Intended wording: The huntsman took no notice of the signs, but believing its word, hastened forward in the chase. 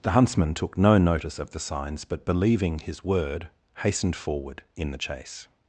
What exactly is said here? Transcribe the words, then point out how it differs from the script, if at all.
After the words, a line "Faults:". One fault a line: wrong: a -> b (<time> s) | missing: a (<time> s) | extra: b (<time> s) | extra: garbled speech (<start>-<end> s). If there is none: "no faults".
The huntsman took no notice of the signs, but believing his word, hastened forward in the chase.
Faults:
wrong: its -> his (2.8 s)